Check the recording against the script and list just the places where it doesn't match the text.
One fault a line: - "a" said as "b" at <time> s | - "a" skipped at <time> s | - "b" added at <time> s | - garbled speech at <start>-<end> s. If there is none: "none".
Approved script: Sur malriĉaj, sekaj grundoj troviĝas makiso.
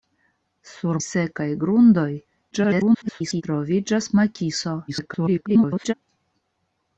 - "malriĉaj" skipped at 1.0 s
- garbled speech at 2.5-3.4 s
- garbled speech at 4.9-5.9 s